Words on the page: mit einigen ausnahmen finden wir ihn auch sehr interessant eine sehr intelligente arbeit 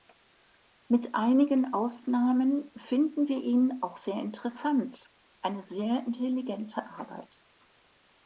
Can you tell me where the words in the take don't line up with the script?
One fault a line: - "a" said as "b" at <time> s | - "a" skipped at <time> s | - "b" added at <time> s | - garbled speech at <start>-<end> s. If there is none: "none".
none